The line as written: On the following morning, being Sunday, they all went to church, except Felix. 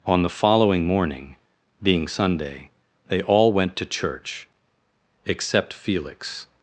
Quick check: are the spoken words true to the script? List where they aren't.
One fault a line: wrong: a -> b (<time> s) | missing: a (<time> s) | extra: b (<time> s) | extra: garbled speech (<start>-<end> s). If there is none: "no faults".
no faults